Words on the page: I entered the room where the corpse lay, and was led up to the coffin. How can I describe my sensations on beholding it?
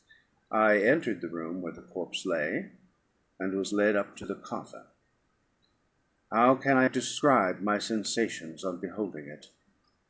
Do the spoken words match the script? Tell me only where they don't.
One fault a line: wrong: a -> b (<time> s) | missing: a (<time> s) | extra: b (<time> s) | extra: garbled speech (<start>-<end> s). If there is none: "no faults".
no faults